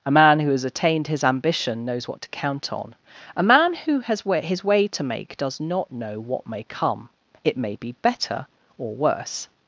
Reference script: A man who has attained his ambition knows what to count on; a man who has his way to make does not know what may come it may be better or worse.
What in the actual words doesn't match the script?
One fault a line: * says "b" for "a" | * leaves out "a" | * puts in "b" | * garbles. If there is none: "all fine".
all fine